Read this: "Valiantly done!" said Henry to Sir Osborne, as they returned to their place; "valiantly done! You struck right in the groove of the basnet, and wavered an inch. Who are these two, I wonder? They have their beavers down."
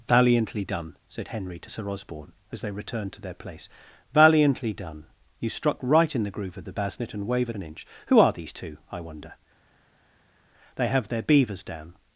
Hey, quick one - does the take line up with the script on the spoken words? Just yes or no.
yes